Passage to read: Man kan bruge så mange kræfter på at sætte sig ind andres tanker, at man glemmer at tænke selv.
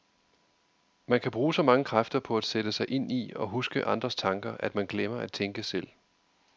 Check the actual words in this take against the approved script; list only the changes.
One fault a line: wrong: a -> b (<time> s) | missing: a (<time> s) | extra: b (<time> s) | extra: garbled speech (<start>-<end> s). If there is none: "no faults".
extra: i og huske (3.1 s)